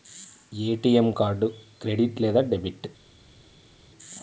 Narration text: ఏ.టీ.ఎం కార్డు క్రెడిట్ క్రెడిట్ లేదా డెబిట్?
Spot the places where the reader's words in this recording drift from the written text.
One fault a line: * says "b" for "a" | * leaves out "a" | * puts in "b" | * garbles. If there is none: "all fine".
* leaves out "క్రెడిట్"